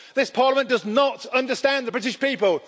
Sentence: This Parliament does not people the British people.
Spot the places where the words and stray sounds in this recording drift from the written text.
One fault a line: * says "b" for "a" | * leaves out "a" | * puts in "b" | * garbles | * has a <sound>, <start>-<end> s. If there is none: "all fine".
* says "understand" for "people"